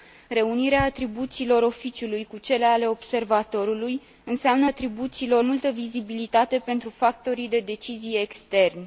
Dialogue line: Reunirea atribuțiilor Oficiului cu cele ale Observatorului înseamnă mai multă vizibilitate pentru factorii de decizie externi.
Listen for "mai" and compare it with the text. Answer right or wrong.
wrong